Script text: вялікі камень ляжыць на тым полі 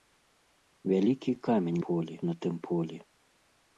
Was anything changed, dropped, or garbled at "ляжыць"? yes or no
yes